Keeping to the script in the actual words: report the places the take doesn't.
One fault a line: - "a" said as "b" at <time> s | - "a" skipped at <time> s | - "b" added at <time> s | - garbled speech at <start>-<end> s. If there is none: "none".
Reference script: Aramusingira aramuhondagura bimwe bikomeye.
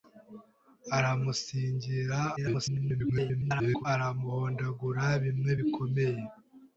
- garbled speech at 2.4-3.9 s